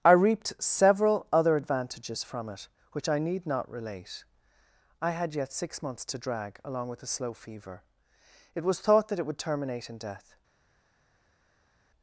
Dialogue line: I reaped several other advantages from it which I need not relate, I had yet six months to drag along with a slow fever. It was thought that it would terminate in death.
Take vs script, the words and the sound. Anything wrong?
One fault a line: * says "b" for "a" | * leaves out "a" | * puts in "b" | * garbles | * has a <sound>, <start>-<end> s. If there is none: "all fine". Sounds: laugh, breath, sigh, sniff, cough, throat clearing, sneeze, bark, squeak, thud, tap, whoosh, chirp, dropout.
all fine